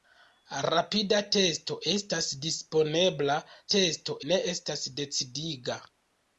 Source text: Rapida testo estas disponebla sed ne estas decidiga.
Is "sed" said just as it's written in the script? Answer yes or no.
no